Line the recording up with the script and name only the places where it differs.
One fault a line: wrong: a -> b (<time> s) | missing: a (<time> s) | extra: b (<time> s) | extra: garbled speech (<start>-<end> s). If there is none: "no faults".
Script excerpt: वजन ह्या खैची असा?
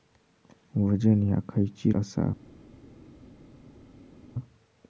no faults